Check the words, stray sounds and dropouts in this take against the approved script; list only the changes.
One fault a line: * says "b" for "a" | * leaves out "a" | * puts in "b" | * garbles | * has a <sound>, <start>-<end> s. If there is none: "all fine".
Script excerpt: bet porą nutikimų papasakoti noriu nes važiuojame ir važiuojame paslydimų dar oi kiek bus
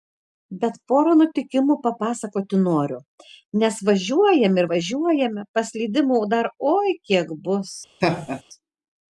* has a laugh, 8.0-8.4 s